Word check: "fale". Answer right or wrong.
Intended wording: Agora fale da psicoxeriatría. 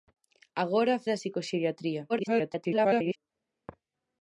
wrong